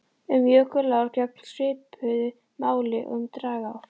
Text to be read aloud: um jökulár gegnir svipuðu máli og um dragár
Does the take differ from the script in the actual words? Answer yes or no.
no